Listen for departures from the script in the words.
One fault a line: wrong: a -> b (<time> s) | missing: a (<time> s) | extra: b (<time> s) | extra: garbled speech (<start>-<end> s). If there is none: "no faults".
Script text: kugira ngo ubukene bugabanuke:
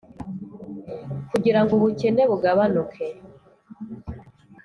no faults